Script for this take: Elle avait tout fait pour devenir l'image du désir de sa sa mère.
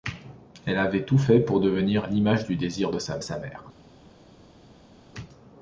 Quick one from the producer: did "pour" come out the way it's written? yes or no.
yes